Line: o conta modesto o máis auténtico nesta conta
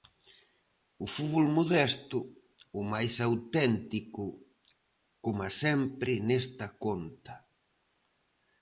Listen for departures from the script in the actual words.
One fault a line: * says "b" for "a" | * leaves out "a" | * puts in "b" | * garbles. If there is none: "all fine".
* says "fútbol" for "conta"
* puts in "coma sempre"